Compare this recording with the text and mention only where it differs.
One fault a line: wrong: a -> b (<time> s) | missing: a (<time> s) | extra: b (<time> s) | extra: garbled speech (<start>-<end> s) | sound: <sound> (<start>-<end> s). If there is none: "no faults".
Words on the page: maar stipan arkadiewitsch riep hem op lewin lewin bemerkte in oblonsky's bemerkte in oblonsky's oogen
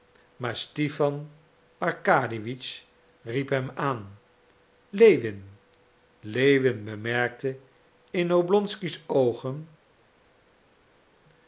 wrong: op -> aan (3.7 s)
missing: bemerkte in oblonsky's (9.0 s)